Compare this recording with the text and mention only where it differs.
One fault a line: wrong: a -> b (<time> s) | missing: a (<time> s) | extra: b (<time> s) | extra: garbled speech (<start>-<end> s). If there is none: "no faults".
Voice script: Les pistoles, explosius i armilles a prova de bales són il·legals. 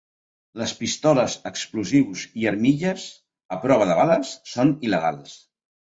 no faults